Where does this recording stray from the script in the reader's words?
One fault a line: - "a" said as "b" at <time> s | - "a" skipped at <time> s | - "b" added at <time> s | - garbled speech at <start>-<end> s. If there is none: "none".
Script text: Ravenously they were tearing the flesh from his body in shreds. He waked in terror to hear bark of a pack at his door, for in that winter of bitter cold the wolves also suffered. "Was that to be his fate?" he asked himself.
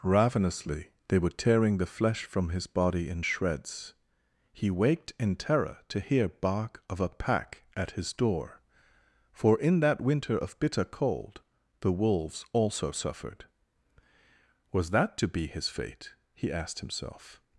none